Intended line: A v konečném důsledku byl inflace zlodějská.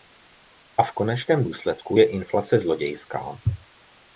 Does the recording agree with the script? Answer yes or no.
no